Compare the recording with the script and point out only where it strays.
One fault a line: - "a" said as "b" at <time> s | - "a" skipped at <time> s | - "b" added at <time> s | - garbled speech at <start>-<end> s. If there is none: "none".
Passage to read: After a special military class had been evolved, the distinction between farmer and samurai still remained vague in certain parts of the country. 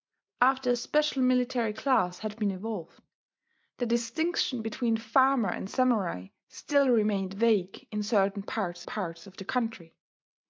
- "parts" added at 8.8 s